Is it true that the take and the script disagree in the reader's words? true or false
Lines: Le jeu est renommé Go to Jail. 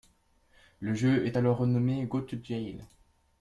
true